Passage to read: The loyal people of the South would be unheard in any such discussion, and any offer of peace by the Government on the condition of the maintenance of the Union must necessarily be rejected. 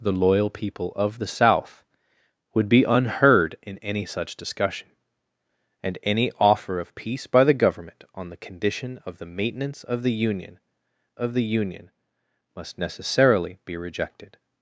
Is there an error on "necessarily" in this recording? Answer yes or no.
no